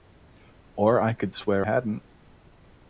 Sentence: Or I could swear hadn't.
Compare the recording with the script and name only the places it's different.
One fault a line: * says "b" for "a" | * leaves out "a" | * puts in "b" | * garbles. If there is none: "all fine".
all fine